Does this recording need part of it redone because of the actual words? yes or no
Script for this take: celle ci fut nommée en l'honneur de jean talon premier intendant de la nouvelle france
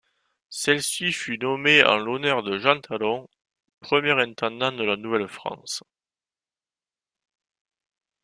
no